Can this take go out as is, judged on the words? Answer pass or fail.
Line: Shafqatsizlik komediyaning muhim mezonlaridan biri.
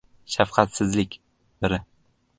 fail